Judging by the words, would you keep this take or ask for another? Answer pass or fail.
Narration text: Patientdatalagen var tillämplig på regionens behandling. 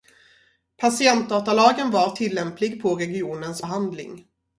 pass